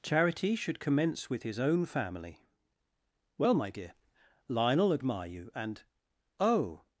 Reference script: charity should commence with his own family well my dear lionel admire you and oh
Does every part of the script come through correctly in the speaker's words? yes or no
yes